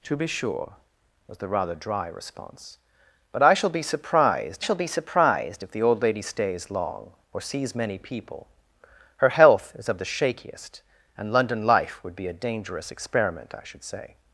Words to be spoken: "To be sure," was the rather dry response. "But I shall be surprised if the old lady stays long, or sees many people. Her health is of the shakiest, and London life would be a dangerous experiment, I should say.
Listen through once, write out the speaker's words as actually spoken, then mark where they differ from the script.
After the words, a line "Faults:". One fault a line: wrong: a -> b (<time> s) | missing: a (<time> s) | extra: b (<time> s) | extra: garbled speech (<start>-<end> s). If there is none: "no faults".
"To be sure," was the rather dry response. "But I shall be surprised shall be surprised if the old lady stays long, or sees many people. Her health is of the shakiest, and London life would be a dangerous experiment, I should say.
Faults:
extra: shall be surprised (4.6 s)